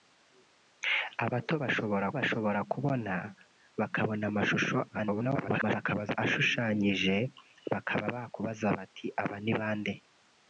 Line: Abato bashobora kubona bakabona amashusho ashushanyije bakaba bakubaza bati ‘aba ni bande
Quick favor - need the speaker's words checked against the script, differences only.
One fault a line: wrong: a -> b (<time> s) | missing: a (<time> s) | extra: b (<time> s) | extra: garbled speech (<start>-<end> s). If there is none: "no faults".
extra: bashobora (2.2 s)
extra: garbled speech (4.9-6.2 s)